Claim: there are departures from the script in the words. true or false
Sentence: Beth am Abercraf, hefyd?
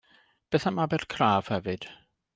false